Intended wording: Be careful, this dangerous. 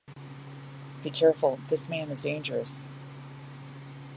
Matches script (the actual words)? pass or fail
fail